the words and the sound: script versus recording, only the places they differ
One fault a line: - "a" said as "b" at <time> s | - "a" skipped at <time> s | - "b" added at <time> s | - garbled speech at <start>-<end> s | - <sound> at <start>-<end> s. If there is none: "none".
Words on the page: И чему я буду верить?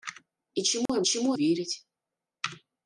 - dropout at 0.9-0.9 s
- "буду" said as "чему" at 1.0 s